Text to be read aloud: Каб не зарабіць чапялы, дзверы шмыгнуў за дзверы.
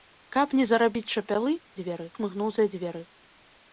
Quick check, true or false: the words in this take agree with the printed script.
true